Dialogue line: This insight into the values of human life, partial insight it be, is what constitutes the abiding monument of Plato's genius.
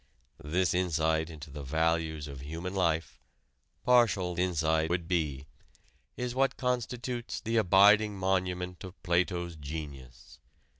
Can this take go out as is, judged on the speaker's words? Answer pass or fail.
pass